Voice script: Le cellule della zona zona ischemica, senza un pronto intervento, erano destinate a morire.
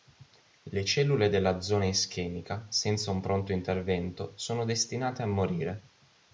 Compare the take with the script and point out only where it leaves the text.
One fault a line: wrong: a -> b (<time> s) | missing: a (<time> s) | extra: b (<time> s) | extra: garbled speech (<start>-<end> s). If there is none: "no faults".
missing: zona (1.8 s)
wrong: erano -> sono (4.4 s)